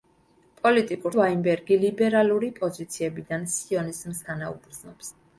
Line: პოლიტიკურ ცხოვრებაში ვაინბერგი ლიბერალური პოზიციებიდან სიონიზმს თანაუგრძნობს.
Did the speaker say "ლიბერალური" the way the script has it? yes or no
yes